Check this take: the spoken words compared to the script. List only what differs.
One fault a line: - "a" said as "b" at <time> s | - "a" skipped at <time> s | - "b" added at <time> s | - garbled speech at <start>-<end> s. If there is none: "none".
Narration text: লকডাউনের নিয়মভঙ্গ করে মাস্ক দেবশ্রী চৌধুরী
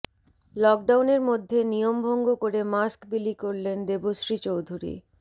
- "মধ্যে" added at 1.3 s
- "বিলি করলেন" added at 3.1 s